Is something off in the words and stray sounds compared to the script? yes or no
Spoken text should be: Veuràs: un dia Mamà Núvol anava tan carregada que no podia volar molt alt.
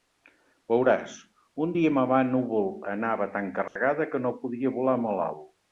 yes